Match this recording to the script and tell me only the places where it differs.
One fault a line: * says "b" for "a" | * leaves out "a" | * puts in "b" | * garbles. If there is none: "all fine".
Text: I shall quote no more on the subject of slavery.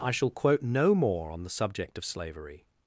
all fine